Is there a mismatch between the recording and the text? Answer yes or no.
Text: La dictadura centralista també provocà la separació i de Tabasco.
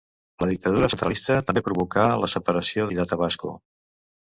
no